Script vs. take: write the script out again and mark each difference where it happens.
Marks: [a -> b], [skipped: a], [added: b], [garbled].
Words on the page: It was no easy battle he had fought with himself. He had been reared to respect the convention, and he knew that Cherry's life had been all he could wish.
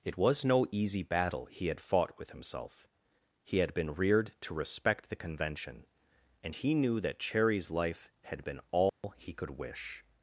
It was no easy battle he had fought with himself. He had been reared to respect the convention, and he knew that Cherry's life had been all he could wish.